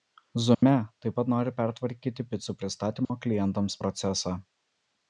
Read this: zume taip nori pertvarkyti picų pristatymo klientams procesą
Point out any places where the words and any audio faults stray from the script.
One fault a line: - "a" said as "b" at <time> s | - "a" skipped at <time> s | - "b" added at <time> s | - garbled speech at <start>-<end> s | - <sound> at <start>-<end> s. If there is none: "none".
- dropout at 0.5-0.6 s
- "pat" added at 1.2 s
- dropout at 3.0-3.1 s